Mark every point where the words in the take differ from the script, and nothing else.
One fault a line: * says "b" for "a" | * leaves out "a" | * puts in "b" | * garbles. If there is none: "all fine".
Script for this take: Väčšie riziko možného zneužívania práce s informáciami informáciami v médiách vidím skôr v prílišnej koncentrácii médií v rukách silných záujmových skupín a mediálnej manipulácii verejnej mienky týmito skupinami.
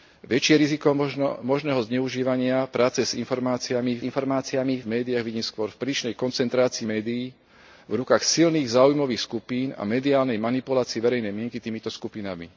all fine